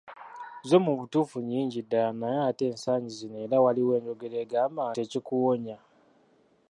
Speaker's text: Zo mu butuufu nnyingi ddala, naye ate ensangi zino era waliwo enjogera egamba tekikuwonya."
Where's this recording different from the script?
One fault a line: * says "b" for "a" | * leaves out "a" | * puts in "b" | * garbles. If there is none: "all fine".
all fine